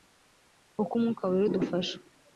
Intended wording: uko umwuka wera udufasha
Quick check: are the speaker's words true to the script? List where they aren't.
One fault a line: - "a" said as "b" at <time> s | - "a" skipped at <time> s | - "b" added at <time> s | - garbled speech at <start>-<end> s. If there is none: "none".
none